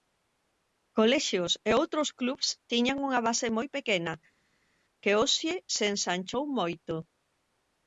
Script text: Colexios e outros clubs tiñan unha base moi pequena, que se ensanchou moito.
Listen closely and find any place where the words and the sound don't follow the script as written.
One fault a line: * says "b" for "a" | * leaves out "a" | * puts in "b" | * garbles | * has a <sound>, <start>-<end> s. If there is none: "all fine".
* puts in "hoxe"